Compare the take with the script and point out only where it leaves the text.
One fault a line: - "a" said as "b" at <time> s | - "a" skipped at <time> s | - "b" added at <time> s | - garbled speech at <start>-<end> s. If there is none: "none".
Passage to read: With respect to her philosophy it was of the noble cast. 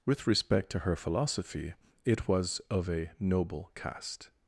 - "the" said as "a" at 2.9 s